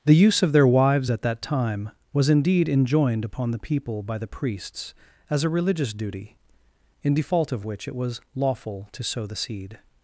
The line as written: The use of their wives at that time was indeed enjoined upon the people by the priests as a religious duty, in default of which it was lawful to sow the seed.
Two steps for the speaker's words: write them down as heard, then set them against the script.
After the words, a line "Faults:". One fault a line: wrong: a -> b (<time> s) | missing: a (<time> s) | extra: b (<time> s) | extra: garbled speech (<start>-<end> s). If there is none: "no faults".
The use of their wives at that time was indeed enjoined upon the people by the priests as a religious duty, in default of which it was lawful to sow the seed.
Faults:
no faults